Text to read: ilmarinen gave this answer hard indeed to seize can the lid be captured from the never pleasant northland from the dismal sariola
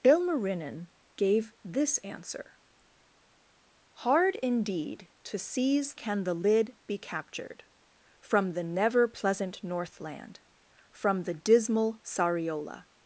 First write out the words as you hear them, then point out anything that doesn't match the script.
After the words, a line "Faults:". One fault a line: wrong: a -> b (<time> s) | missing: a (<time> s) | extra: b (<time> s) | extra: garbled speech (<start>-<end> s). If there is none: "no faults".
ilmarinen gave this answer hard indeed to seize can the lid be captured from the never pleasant northland from the dismal sariola
Faults:
no faults